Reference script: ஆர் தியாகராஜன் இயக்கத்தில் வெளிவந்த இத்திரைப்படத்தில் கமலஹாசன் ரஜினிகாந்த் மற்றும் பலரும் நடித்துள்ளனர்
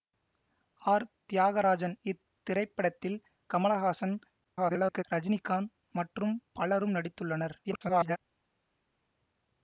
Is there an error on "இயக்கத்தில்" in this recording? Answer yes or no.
yes